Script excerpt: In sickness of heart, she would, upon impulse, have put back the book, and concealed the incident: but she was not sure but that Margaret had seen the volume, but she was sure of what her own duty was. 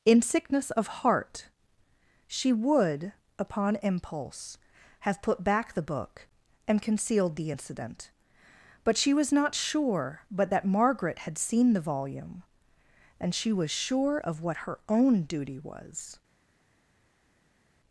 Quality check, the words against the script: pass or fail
fail